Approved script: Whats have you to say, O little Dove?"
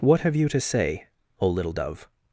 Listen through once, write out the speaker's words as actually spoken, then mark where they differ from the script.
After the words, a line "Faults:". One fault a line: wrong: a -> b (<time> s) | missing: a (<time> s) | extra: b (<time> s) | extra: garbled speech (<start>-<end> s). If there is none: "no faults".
What have you to say, O little Dove?"
Faults:
wrong: Whats -> What (0.0 s)